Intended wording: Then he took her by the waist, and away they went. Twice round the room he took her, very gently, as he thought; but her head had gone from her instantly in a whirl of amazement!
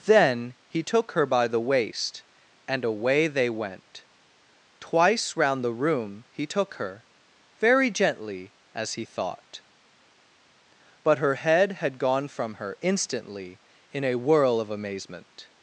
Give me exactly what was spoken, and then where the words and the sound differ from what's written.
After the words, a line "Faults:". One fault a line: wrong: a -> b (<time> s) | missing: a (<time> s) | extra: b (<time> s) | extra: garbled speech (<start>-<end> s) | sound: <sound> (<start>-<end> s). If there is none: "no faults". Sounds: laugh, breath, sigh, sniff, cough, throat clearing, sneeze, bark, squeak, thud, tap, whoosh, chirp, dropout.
Then he took her by the waist, and away they went. Twice round the room he took her, very gently, as he thought; but her head had gone from her instantly in a whirl of amazement!
Faults:
no faults